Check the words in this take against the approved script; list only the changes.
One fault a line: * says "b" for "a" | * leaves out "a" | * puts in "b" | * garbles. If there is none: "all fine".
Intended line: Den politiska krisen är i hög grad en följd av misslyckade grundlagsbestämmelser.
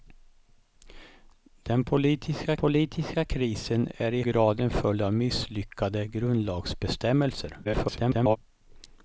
* puts in "politiska"
* leaves out "hög"
* garbles